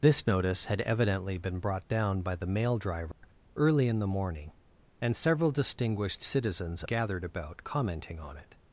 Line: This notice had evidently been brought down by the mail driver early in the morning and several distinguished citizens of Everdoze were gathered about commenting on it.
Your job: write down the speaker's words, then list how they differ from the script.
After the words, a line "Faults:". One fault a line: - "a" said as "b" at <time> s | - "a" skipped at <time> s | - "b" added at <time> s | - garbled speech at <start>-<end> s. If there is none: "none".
This notice had evidently been brought down by the mail driver early in the morning and several distinguished citizens gathered about commenting on it.
Faults:
- "of Everdoze were" skipped at 6.8 s